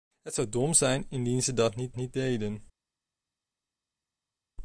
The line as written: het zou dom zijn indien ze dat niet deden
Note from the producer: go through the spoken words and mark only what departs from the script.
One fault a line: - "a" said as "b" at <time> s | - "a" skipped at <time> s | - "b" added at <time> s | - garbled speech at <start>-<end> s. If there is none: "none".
- "niet" added at 1.9 s